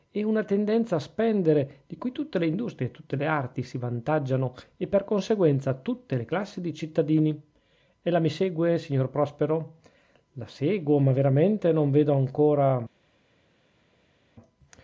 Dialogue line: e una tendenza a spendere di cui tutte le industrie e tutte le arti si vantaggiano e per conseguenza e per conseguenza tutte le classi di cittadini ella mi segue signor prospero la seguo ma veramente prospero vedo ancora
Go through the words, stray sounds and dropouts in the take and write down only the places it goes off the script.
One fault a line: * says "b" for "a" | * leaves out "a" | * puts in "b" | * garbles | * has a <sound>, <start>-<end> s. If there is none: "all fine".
* leaves out "e per conseguenza"
* says "non" for "prospero"